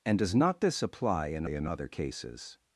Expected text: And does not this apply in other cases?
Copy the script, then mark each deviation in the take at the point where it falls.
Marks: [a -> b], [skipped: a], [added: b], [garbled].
And does not this apply in [added: in] other cases?